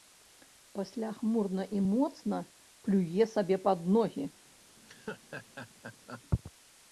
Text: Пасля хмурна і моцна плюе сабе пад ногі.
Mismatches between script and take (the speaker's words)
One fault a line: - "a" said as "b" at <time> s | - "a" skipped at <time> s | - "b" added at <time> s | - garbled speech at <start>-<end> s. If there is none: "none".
none